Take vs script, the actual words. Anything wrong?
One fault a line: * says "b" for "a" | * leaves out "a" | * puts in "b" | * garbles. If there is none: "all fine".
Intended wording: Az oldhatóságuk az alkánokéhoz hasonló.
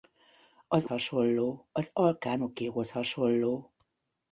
* says "hasonló" for "oldhatóságuk"